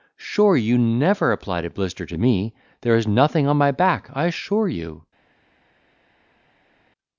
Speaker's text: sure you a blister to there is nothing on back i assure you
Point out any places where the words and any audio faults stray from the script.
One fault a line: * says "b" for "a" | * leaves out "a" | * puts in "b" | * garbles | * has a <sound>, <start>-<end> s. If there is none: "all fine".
* puts in "never applied"
* puts in "me"
* puts in "my"